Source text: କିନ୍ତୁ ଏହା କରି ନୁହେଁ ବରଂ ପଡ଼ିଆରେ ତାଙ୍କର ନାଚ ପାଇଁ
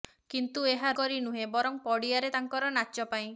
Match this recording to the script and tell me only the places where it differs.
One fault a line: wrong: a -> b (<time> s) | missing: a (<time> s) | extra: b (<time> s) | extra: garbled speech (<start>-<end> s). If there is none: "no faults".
no faults